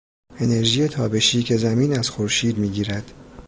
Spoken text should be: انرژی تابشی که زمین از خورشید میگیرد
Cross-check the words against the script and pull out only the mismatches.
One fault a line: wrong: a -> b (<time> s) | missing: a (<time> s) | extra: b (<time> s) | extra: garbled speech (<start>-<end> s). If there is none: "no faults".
no faults